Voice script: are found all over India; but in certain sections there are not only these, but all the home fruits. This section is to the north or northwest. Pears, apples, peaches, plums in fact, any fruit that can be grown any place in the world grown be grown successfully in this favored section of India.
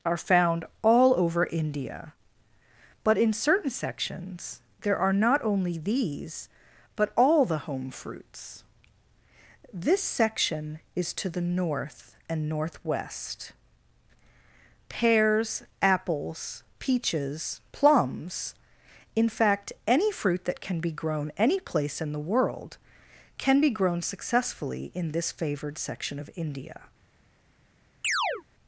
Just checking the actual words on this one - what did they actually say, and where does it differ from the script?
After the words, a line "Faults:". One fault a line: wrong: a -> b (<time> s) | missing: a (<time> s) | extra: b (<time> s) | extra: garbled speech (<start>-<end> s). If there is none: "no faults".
are found all over India; but in certain sections there are not only these, but all the home fruits. This section is to the north and northwest. Pears, apples, peaches, plums in fact, any fruit that can be grown any place in the world can be grown successfully in this favored section of India.
Faults:
wrong: or -> and (12.3 s)
wrong: grown -> can (23.4 s)